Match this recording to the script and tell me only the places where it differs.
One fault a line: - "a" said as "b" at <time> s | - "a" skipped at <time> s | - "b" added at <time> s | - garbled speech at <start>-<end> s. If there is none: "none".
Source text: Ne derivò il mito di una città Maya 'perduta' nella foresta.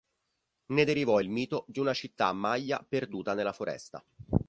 none